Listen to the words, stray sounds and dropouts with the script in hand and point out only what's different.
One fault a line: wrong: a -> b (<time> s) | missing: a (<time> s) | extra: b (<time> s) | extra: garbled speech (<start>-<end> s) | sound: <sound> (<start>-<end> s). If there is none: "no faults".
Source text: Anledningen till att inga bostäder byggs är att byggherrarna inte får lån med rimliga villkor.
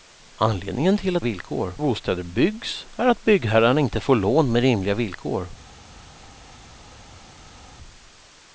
wrong: inga -> villkor (1.2 s)